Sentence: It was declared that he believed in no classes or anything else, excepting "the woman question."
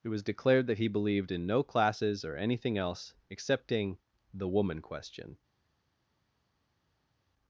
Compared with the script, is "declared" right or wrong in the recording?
right